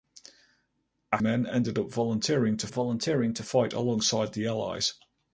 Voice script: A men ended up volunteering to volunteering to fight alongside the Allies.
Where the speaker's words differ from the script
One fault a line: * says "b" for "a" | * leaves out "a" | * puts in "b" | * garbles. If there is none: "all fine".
all fine